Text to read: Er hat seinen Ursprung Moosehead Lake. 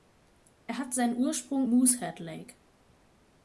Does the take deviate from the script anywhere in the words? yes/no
no